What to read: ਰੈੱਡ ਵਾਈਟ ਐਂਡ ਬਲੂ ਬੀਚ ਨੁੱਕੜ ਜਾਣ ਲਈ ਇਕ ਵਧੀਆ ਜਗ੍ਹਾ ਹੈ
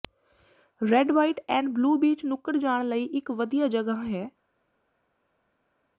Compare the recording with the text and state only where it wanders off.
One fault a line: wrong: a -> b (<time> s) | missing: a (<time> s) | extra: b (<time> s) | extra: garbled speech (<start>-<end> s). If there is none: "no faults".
no faults